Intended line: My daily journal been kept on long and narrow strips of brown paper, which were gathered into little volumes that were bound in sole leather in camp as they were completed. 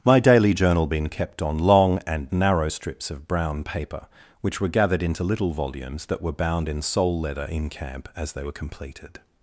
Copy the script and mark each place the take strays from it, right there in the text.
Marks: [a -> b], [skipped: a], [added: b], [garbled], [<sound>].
My daily journal been kept on long and narrow strips of brown paper, which were gathered into little volumes that were bound in sole leather in camp as they were completed.